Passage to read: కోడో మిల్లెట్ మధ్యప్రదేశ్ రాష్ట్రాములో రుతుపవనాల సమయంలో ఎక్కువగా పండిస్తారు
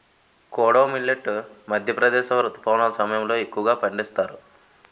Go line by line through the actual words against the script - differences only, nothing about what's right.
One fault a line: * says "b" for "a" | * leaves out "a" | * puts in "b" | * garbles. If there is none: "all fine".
* leaves out "రాష్ట్రాములో"